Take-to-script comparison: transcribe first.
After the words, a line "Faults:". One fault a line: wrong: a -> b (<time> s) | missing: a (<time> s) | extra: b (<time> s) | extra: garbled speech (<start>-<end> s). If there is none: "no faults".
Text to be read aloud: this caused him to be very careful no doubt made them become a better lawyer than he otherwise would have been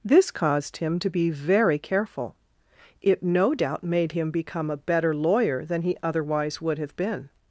this caused him to be very careful it no doubt made him become a better lawyer than he otherwise would have been
Faults:
extra: it (3.0 s)
wrong: them -> him (4.1 s)